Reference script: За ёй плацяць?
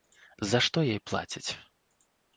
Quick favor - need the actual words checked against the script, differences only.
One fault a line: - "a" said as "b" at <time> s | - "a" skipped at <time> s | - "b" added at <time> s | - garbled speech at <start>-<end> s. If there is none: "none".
- "што" added at 0.7 s